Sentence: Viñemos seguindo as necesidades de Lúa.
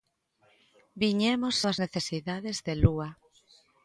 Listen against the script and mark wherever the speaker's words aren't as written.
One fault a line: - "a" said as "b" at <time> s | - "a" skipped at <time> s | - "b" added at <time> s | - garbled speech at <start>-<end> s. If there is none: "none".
- "seguindo" skipped at 1.6 s